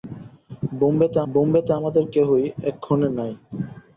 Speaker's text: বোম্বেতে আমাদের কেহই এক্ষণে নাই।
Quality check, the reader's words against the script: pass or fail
fail